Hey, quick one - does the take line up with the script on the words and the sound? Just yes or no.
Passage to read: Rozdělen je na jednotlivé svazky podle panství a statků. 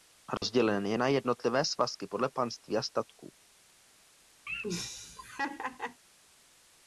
no